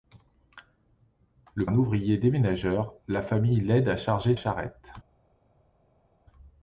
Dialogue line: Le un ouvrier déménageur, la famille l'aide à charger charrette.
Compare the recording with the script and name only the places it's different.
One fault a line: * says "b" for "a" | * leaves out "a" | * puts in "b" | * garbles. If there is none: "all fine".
all fine